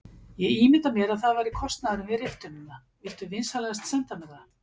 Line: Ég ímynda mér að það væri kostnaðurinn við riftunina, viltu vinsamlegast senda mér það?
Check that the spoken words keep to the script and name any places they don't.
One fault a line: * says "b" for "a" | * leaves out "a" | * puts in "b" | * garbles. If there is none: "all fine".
all fine